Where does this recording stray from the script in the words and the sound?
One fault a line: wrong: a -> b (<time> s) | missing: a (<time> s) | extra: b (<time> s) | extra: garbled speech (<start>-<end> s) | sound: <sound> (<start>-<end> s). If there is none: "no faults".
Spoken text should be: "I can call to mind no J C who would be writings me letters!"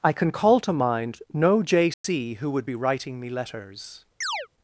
sound: dropout (1.9-2.0 s)
wrong: writings -> writing (2.8 s)
sound: chirp (4.2-4.5 s)